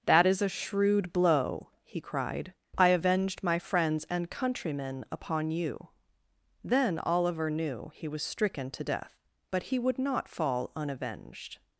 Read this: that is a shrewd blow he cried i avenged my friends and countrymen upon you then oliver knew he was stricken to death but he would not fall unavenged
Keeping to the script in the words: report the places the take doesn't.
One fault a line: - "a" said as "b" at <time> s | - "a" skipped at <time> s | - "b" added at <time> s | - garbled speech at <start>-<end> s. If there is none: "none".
none